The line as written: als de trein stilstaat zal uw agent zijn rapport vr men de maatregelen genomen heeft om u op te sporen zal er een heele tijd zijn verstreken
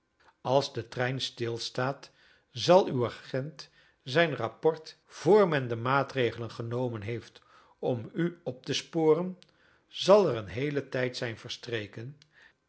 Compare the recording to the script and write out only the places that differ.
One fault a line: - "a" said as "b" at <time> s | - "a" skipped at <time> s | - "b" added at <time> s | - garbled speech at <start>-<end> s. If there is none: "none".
none